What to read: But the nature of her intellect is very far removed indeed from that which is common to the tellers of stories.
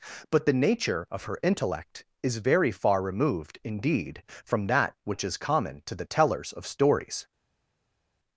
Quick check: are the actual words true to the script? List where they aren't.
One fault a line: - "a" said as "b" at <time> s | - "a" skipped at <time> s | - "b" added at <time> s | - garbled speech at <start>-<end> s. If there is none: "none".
none